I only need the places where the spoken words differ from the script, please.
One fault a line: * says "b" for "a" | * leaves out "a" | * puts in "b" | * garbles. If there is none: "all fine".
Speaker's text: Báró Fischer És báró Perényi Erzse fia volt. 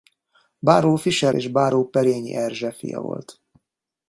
all fine